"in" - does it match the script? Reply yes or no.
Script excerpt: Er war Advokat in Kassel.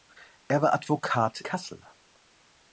no